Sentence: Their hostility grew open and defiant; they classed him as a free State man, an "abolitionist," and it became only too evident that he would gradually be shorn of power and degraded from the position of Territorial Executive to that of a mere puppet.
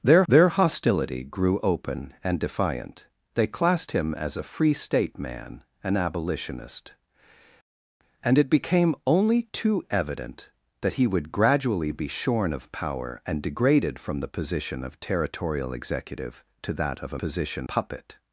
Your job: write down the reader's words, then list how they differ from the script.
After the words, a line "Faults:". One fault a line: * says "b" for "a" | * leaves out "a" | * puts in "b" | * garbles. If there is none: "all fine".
Their their hostility grew open and defiant; they classed him as a free State man, an "abolitionist," and it became only too evident that he would gradually be shorn of power and degraded from the position of Territorial Executive to that of a position puppet.
Faults:
* puts in "their"
* says "position" for "mere"